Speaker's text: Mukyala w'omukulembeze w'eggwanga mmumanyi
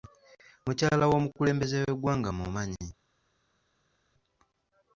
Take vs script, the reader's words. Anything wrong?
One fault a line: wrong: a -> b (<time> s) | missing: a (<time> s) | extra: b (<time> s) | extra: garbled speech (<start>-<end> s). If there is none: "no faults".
no faults